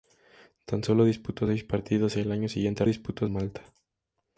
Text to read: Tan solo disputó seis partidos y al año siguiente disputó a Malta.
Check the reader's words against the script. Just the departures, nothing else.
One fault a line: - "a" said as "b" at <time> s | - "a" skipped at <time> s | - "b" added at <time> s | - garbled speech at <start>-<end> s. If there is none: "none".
none